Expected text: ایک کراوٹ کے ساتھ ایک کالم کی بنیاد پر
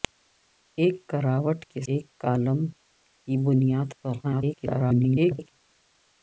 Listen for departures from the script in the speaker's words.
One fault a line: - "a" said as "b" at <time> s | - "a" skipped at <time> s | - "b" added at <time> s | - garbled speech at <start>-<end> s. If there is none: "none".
- "ساتھ" skipped at 1.8 s
- garbled speech at 4.2-5.5 s